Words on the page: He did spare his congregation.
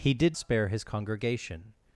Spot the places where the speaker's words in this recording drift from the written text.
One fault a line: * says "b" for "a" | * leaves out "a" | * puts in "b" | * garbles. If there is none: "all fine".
all fine